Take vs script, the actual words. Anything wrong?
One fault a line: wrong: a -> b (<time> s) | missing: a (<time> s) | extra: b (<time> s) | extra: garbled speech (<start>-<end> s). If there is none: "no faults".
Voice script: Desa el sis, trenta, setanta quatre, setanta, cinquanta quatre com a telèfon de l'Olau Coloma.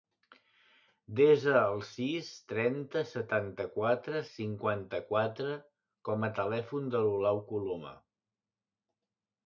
missing: setanta (4.2 s)